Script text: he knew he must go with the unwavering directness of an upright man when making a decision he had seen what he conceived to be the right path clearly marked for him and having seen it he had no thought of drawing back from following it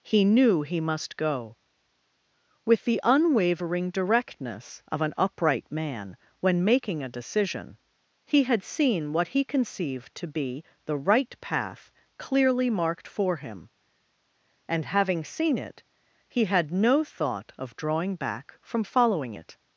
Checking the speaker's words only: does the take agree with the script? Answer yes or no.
yes